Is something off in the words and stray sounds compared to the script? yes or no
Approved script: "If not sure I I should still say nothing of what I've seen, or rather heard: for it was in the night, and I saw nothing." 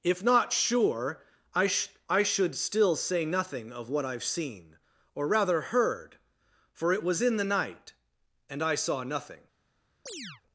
yes